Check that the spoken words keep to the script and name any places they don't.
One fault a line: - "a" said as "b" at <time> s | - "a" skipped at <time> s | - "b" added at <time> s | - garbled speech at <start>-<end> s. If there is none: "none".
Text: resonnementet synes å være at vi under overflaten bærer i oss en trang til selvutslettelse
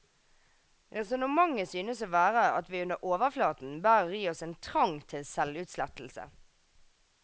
none